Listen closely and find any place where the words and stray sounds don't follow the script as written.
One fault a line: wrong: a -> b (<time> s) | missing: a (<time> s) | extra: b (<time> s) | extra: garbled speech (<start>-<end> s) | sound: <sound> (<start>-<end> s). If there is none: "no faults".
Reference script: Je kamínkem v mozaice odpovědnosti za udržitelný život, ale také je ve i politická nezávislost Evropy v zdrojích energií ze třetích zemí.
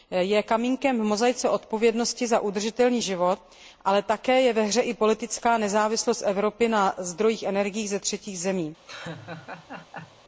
extra: hře (4.6 s)
wrong: v -> na (6.7 s)
sound: laugh (8.9-10.2 s)